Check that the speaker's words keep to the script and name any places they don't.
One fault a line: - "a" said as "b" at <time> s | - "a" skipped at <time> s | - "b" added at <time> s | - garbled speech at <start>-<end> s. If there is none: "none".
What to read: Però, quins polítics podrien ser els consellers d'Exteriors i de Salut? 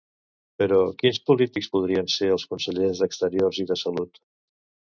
none